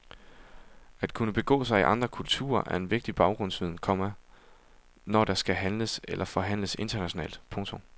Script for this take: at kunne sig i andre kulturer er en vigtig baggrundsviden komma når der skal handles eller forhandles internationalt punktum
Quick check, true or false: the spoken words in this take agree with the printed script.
false